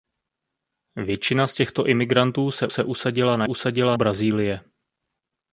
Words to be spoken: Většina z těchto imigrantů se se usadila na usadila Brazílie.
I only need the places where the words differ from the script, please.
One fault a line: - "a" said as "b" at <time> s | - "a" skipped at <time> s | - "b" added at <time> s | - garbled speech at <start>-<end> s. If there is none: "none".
none